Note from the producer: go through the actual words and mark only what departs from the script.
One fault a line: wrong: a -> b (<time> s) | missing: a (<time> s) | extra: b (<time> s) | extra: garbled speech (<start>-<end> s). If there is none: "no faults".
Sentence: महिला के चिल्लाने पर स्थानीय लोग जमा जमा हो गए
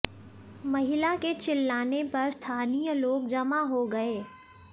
missing: जमा (3.6 s)